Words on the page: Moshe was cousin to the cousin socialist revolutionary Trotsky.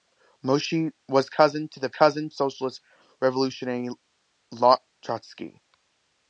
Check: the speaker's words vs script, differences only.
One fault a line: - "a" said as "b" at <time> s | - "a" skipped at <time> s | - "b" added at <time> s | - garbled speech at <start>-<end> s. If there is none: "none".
none